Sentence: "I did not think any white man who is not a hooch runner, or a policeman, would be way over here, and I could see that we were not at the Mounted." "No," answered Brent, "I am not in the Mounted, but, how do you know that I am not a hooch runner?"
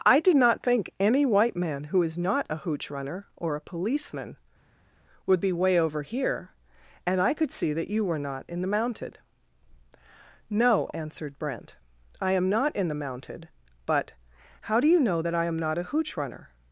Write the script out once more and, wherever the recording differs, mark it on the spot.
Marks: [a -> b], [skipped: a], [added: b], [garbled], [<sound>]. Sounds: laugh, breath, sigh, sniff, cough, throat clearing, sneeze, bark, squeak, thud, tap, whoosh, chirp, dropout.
"I did not think any white man who is not a hooch runner, or a policeman, would be way over here, and I could see that [we -> you] were not [at -> in] the Mounted." "No," answered Brent, "I am not in the Mounted, but, how do you know that I am not a hooch runner?"